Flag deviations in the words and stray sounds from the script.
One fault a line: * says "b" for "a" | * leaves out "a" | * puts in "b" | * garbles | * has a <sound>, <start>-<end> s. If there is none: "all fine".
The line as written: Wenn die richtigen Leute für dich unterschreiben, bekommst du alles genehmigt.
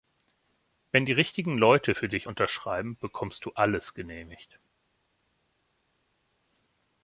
all fine